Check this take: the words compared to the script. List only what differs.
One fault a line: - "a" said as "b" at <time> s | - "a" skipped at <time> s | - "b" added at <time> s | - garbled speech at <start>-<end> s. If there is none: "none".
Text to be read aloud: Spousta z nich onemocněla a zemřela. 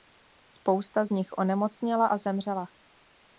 none